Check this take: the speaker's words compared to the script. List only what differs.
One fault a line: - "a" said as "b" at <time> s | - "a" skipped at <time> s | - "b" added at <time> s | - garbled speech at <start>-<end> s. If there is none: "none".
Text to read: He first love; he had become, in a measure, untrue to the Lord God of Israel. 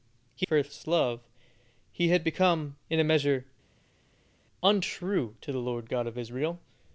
none